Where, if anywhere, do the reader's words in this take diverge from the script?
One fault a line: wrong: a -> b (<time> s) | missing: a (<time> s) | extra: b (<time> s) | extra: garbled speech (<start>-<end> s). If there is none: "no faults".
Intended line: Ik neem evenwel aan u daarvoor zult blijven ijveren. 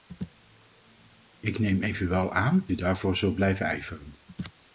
no faults